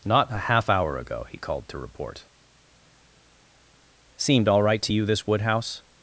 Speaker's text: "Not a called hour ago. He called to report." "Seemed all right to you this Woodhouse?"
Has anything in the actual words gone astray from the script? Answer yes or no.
yes